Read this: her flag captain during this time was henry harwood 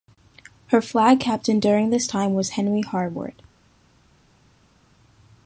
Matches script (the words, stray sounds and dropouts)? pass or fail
pass